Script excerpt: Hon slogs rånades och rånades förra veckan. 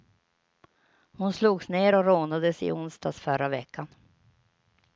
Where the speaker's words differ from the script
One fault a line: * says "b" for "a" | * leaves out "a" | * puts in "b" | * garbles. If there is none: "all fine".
* says "ner" for "rånades"
* puts in "i onsdags"